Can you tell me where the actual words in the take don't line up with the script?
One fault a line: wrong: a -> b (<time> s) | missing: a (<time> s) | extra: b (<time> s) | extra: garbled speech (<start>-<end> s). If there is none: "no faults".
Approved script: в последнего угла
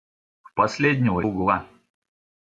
no faults